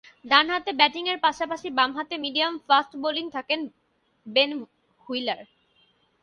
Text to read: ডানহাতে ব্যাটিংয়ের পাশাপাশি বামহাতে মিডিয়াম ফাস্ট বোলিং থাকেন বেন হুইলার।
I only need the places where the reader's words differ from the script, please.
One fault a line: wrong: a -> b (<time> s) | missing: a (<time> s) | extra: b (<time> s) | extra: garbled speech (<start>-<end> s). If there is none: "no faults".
no faults